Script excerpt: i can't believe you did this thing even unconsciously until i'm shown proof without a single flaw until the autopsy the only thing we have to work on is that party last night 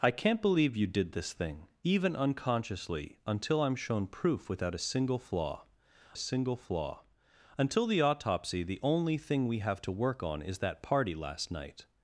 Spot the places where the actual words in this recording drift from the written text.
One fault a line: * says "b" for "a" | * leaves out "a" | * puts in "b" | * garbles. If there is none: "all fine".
* puts in "single flaw"